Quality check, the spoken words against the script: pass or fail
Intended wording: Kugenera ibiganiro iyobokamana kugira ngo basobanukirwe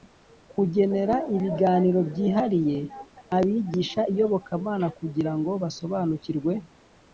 fail